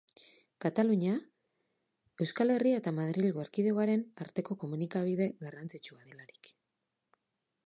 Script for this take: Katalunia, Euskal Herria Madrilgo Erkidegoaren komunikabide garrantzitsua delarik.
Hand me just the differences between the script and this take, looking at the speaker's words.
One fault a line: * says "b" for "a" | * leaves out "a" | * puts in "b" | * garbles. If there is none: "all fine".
* puts in "eta"
* puts in "arteko"